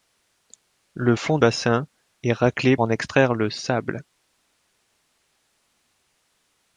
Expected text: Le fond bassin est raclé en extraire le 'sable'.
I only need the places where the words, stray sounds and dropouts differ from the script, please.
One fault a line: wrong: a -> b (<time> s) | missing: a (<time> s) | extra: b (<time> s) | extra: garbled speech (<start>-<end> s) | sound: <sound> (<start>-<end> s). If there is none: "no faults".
no faults